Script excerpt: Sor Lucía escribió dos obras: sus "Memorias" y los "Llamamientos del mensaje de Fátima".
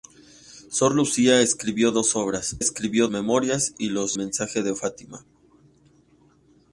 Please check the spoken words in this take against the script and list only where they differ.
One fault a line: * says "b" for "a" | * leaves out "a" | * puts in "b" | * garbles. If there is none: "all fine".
* says "escribió" for "sus"
* leaves out "Llamamientos del"